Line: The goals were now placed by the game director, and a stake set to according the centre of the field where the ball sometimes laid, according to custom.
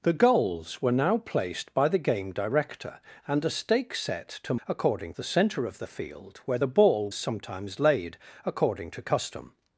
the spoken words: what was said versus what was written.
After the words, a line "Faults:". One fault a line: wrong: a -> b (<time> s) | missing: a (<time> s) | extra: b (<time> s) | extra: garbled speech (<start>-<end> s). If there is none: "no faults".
The goals were now placed by the game director, and a stake set to according the centre of the field where the ball sometimes laid, according to custom.
Faults:
no faults